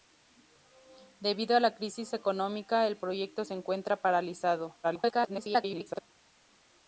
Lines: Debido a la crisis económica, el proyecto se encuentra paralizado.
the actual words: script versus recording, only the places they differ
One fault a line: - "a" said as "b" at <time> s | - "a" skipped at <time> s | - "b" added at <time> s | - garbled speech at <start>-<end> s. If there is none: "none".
- garbled speech at 4.8-6.0 s